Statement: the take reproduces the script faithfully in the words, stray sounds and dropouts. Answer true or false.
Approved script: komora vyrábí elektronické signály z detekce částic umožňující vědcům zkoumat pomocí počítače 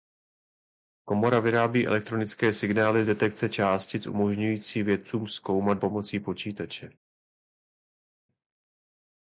true